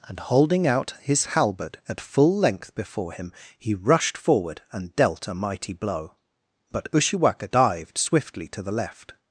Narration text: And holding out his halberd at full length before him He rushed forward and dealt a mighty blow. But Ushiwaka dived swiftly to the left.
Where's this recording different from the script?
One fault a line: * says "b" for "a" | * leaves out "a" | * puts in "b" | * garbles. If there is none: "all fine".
all fine